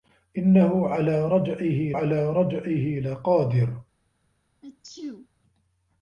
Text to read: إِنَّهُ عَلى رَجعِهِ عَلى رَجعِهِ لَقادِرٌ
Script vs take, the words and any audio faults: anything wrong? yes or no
yes